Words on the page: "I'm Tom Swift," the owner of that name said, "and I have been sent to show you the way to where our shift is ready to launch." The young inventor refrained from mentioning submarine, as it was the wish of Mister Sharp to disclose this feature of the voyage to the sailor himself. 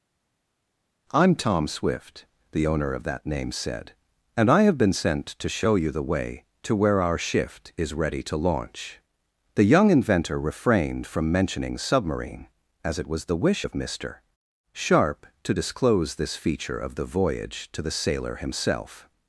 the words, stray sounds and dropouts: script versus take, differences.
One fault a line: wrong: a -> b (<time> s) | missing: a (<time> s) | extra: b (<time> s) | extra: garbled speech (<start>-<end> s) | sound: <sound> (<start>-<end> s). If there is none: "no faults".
no faults